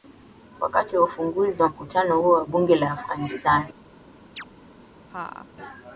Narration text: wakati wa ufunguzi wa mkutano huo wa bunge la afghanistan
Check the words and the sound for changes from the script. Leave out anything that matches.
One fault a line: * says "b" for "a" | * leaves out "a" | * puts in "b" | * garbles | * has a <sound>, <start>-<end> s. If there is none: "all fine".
* has a chirp, 4.4-4.4 s
* has a laugh, 5.1-5.5 s